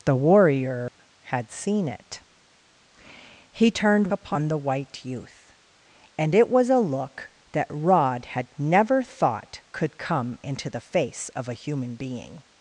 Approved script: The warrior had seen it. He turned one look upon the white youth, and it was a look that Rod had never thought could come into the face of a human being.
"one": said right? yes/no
no